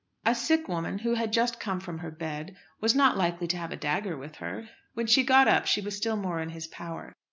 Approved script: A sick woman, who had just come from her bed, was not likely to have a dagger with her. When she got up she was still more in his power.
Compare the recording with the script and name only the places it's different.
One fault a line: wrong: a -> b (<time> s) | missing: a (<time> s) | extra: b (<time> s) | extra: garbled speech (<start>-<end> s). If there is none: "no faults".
no faults